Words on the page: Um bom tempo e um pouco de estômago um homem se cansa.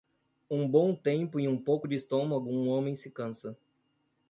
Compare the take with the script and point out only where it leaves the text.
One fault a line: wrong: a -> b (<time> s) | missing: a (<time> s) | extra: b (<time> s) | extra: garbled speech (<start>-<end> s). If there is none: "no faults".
no faults